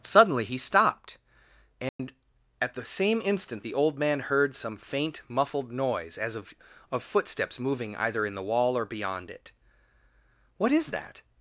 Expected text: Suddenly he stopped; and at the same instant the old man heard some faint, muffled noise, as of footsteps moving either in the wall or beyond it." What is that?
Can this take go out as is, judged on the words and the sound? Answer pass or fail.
fail